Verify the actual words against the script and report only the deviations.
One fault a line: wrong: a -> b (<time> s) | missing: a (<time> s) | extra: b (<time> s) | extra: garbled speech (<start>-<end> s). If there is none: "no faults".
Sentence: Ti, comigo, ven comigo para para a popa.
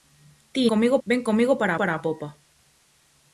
no faults